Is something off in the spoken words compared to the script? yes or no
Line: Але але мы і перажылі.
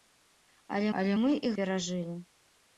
no